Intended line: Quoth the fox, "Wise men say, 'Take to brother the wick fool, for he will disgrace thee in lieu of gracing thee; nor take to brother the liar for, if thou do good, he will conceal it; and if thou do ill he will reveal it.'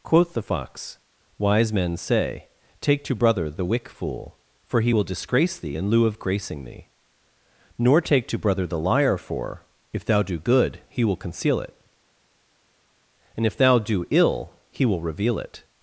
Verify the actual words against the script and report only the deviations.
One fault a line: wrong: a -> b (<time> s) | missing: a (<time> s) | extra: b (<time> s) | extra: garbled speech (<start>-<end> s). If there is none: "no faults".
no faults